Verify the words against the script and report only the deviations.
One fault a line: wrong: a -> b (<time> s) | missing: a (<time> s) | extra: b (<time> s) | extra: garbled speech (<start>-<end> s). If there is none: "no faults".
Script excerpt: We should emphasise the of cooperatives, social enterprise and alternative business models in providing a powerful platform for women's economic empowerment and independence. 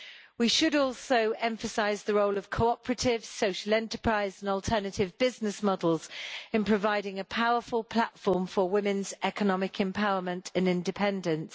extra: also (0.7 s)
extra: role (2.1 s)